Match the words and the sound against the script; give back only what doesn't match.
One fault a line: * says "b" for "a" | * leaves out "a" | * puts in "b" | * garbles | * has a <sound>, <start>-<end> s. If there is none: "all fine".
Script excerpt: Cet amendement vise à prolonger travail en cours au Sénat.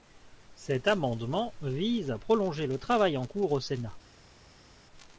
* puts in "le"